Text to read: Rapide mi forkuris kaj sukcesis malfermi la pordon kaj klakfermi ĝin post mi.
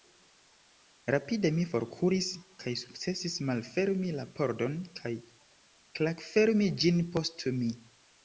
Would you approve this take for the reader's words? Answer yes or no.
yes